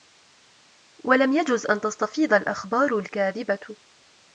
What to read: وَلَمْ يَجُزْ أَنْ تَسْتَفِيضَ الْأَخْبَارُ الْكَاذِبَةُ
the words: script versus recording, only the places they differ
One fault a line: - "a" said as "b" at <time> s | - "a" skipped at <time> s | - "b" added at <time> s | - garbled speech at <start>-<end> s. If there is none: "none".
none